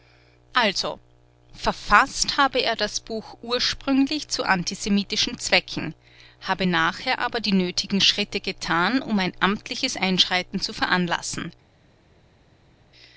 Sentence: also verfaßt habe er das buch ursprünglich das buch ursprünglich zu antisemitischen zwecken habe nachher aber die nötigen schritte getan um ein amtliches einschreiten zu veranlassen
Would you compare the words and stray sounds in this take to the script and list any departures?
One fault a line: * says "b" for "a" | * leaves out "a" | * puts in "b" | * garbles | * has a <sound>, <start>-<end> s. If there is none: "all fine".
* leaves out "das buch ursprünglich"